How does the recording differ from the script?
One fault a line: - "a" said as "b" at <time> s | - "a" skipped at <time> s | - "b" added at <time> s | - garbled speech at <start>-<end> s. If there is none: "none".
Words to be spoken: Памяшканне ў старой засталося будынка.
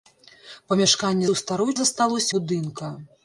none